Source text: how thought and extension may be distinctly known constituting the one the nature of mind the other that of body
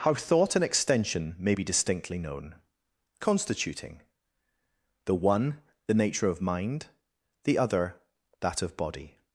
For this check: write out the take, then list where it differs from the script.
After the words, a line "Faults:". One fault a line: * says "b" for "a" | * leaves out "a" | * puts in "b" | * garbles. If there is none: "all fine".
how thought and extension may be distinctly known constituting the one the nature of mind the other that of body
Faults:
all fine